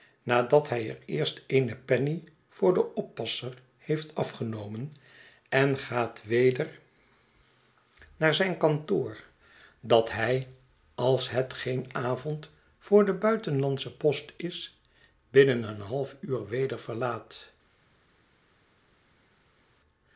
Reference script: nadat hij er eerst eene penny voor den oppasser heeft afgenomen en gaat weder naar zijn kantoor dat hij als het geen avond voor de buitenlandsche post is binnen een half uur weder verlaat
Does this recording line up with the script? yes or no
yes